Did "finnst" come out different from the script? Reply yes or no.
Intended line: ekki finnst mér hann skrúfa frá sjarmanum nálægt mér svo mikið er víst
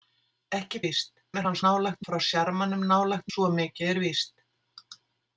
yes